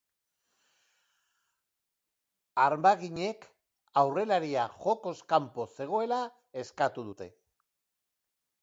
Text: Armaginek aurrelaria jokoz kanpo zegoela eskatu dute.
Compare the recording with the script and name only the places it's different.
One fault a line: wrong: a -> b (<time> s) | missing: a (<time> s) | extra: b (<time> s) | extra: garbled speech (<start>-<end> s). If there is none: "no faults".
no faults